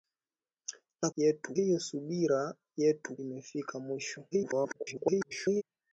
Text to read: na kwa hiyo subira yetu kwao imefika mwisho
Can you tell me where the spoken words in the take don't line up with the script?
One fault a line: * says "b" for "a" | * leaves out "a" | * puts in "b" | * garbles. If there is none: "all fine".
* says "yetu" for "kwa"
* leaves out "kwao"
* garbles